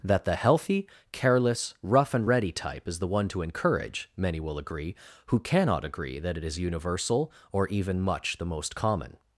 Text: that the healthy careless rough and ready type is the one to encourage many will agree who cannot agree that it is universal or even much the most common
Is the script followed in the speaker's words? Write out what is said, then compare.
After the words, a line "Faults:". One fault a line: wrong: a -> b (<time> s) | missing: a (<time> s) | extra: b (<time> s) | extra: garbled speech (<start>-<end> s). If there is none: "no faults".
that the healthy careless rough and ready type is the one to encourage many will agree who cannot agree that it is universal or even much the most common
Faults:
no faults